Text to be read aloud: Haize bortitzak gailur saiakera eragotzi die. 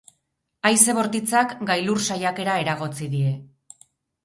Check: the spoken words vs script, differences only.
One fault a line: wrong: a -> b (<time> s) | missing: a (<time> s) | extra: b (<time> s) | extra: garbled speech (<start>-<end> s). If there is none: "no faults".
no faults